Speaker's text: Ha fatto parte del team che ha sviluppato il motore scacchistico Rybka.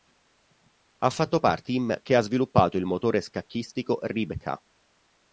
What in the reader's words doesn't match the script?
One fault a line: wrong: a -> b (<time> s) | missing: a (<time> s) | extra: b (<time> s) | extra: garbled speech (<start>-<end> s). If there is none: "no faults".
missing: del (1.7 s)